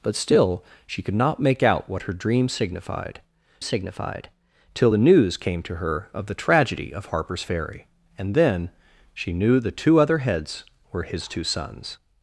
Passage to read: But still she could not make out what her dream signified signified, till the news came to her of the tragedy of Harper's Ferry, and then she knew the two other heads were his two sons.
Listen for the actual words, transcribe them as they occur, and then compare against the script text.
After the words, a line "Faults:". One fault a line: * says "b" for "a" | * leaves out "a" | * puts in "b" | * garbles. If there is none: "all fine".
But still she could not make out what her dream signified signified, till the news came to her of the tragedy of Harper's Ferry, and then she knew the two other heads were his two sons.
Faults:
all fine